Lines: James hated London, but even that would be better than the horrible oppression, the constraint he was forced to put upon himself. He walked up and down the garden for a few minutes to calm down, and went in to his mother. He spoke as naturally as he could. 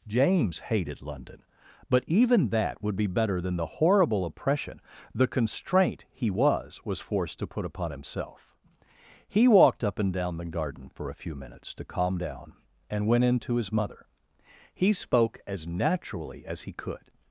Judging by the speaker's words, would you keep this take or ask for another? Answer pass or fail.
fail